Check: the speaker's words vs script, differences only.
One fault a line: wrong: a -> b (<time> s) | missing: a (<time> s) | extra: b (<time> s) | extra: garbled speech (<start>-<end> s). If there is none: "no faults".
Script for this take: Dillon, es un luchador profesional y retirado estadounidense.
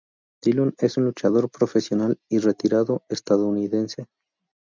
no faults